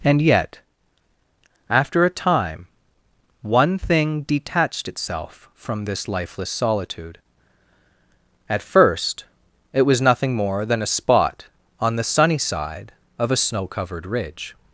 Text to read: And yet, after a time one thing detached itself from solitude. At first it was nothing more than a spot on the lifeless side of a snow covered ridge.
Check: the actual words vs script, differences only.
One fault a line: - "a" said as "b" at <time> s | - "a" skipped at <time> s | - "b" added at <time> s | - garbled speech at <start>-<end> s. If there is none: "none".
- "this lifeless" added at 5.8 s
- "lifeless" said as "sunny" at 12.0 s